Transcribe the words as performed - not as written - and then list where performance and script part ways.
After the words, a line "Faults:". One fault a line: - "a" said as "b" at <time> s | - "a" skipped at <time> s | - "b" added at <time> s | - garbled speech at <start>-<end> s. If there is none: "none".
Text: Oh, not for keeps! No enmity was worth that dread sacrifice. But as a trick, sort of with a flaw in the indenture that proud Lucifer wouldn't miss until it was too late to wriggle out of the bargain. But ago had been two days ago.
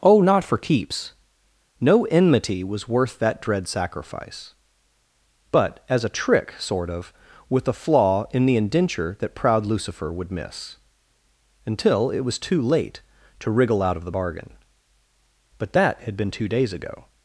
Oh, not for keeps! No enmity was worth that dread sacrifice. But as a trick, sort of with a flaw in the indenture that proud Lucifer would miss until it was too late to wriggle out of the bargain. But that had been two days ago.
Faults:
- "wouldn't" said as "would" at 10.1 s
- "ago" said as "that" at 15.7 s